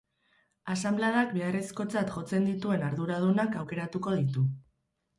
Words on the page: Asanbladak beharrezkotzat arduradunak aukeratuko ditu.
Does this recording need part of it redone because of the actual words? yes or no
yes